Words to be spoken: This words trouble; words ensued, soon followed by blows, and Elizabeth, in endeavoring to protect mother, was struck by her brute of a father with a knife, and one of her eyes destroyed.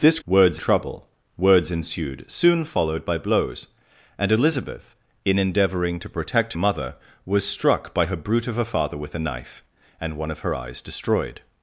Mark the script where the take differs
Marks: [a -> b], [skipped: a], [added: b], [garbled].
This words trouble; words ensued, soon followed by blows, and Elizabeth, in endeavoring to protect mother, was struck by her brute of a father with a knife, and one of her eyes destroyed.